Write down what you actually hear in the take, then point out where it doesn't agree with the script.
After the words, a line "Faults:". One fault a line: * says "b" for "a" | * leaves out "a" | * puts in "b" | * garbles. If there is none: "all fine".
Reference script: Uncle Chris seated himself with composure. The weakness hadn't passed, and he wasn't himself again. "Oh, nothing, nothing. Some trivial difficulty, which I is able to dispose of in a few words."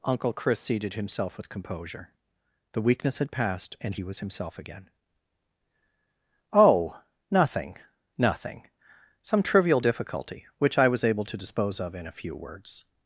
Uncle Chris seated himself with composure. The weakness had passed, and he was himself again. "Oh, nothing, nothing. Some trivial difficulty, which I was able to dispose of in a few words."
Faults:
* says "had" for "hadn't"
* says "was" for "wasn't"
* says "was" for "is"